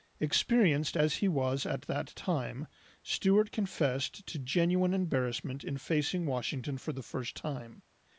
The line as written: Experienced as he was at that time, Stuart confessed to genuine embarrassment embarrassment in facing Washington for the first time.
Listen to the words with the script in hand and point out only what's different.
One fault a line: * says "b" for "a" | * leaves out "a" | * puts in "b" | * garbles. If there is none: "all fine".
* leaves out "embarrassment"